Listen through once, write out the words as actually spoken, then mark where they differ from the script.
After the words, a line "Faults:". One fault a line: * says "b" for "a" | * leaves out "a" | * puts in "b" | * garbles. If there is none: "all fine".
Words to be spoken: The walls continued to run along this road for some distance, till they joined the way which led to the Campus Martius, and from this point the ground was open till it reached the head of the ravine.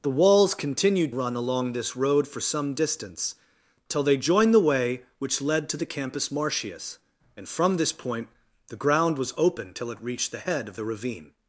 The walls continued run along this road for some distance, till they joined the way which led to the Campus Martius, and from this point the ground was open till it reached the head of the ravine.
Faults:
* leaves out "to"